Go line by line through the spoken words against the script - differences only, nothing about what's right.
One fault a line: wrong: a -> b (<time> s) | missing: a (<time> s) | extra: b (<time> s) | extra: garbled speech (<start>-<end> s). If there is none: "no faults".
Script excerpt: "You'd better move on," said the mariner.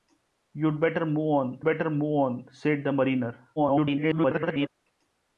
extra: better move on (1.6 s)
extra: garbled speech (3.6-4.7 s)